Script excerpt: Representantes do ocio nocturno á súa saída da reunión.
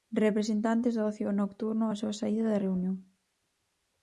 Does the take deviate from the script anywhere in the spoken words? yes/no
no